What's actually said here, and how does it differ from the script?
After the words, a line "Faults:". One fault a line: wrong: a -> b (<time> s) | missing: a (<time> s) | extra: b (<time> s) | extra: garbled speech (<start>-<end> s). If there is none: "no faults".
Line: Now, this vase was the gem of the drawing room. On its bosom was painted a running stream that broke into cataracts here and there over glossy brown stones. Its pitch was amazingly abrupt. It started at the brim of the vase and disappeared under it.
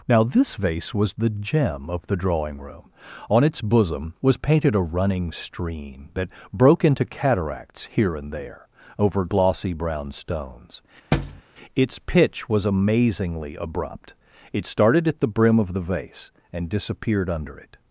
Now, this vase was the gem of the drawing room. On its bosom was painted a running stream that broke into cataracts here and there over glossy brown stones. Its pitch was amazingly abrupt. It started at the brim of the vase and disappeared under it.
Faults:
no faults